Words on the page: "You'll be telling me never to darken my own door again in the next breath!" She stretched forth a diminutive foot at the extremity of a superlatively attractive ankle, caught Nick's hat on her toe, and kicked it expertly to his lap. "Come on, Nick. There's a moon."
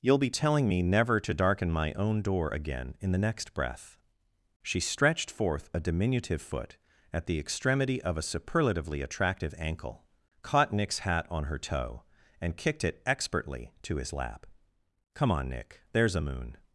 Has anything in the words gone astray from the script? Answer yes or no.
no